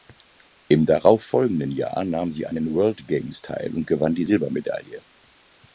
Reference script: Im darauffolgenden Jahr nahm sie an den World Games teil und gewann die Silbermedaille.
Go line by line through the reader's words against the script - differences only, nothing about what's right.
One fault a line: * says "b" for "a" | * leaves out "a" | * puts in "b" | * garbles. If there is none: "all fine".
all fine